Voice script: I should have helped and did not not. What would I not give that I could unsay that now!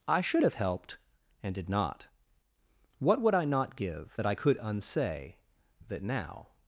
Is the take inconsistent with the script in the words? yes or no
yes